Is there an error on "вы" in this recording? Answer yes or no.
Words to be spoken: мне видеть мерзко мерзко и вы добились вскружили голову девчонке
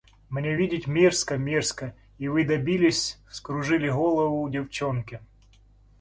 no